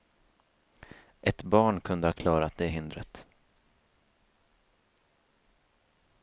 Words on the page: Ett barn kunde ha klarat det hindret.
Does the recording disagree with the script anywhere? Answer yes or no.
no